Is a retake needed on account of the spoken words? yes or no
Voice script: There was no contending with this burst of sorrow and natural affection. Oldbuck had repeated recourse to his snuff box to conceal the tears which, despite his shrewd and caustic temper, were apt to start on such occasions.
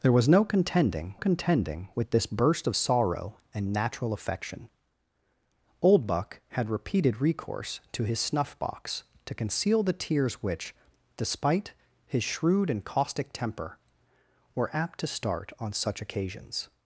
yes